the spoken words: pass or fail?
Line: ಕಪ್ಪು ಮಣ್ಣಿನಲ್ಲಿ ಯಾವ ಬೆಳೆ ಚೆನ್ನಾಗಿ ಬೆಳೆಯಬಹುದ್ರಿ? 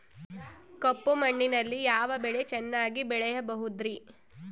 pass